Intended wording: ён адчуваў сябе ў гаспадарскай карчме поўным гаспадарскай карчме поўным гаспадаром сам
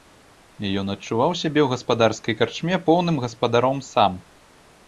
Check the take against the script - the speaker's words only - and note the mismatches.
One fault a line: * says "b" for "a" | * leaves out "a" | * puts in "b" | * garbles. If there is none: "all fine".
* leaves out "гаспадарскай карчме поўным"